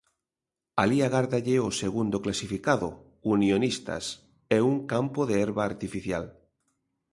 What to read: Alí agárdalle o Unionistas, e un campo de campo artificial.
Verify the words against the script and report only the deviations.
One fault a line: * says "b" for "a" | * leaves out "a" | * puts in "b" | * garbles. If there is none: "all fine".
* puts in "segundo clasificado"
* says "herba" for "campo"